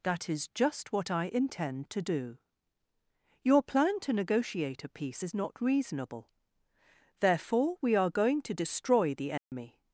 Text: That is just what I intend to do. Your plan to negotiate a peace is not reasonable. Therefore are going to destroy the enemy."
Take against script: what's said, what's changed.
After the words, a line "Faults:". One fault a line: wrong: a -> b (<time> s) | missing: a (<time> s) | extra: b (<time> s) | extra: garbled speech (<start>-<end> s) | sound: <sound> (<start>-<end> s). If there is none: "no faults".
That is just what I intend to do. Your plan to negotiate a peace is not reasonable. Therefore we are going to destroy the enemy."
Faults:
extra: we (7.8 s)
sound: dropout (9.4-9.5 s)